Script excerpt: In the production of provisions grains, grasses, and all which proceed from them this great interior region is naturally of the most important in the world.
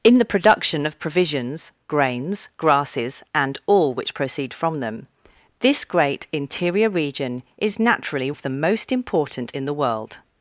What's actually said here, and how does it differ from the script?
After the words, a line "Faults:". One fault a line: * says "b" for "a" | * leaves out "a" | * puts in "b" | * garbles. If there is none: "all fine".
In the production of provisions grains, grasses, and all which proceed from them this great interior region is naturally of the most important in the world.
Faults:
all fine